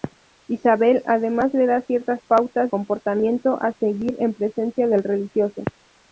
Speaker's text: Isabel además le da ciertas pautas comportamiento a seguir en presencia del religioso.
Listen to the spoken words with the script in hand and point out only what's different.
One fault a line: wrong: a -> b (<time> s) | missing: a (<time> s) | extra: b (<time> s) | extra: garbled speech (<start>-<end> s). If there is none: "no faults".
no faults